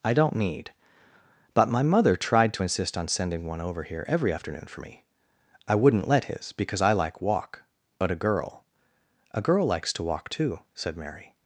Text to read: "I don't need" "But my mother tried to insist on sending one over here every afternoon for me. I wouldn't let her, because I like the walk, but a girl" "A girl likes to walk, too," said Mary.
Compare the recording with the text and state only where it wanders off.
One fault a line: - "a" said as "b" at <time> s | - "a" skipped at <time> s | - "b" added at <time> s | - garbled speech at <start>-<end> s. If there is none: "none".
- "her" said as "his" at 6.2 s
- "the" skipped at 7.2 s